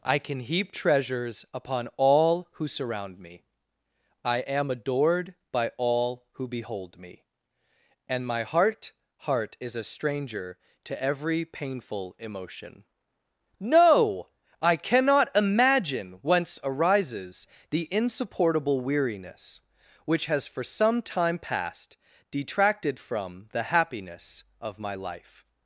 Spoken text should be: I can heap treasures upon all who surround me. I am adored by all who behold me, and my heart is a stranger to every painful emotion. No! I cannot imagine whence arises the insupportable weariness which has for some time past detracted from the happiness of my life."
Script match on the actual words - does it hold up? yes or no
no